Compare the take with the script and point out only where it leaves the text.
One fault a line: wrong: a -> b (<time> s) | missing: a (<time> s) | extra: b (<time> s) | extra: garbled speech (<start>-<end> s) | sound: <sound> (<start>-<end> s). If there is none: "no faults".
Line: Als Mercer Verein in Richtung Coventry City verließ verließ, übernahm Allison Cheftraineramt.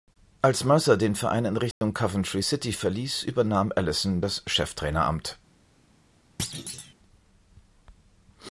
extra: den (1.0 s)
sound: dropout (1.7-1.8 s)
missing: verließ (3.2 s)
extra: das (4.2 s)
sound: thud (6.4-6.9 s)